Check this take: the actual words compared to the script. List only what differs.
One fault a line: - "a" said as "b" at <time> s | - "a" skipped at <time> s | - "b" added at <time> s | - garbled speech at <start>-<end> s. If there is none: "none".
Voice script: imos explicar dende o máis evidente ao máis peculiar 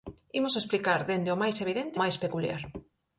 - "ao" skipped at 2.0 s